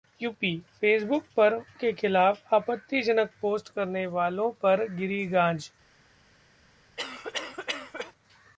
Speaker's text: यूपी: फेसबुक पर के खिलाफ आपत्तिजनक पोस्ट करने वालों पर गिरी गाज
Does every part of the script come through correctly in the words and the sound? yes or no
no